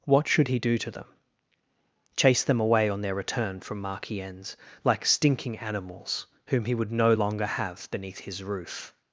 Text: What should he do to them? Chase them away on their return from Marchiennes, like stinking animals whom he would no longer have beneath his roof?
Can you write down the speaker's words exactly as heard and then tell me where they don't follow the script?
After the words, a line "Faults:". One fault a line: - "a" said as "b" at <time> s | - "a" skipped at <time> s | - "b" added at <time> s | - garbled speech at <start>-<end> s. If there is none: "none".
What should he do to them? Chase them away on their return from Marchiennes, like stinking animals whom he would no longer have beneath his roof?
Faults:
none